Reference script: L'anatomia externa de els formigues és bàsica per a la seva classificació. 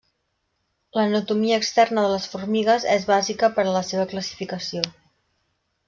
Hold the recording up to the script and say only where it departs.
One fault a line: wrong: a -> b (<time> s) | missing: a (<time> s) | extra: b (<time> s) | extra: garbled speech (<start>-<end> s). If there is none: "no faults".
wrong: els -> les (2.1 s)